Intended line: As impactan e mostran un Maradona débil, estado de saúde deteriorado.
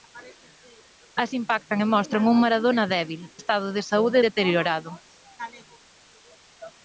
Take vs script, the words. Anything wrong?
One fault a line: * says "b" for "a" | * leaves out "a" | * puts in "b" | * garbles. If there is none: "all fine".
all fine